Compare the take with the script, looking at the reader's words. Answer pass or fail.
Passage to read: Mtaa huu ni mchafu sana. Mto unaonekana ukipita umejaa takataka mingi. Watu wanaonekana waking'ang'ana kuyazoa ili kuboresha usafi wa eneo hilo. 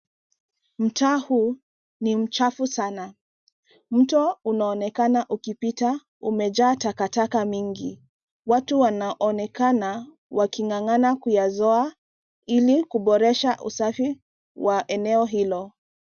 pass